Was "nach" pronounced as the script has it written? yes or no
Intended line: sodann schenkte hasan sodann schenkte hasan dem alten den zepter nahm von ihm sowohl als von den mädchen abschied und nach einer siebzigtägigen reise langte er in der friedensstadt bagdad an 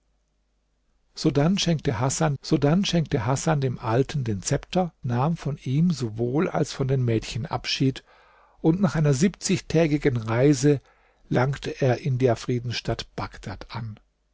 yes